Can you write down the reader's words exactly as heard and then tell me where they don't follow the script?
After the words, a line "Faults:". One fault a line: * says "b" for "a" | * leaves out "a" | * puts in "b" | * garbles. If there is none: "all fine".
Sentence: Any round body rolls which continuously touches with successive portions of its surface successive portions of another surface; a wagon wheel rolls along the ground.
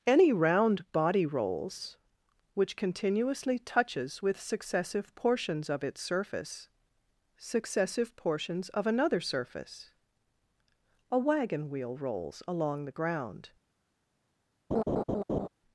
Any round body rolls which continuously touches with successive portions of its surface successive portions of another surface; a wagon wheel rolls along the ground.
Faults:
all fine